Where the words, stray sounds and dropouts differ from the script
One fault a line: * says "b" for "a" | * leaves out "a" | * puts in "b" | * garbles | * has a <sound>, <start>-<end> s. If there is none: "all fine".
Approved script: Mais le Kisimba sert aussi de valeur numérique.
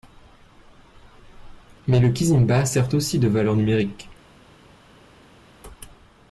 all fine